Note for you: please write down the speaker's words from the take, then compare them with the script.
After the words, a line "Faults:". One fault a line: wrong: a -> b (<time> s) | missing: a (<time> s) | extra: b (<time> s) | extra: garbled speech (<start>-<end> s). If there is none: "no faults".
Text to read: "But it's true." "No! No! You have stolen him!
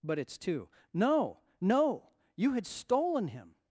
"But it's two." "No! No! You had stolen him!
Faults:
wrong: true -> two (0.4 s)
wrong: have -> had (2.5 s)